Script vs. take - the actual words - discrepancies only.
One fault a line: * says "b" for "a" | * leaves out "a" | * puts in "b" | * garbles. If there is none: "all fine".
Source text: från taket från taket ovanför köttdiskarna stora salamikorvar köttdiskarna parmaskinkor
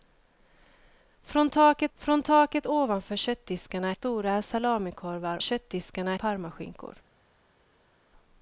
all fine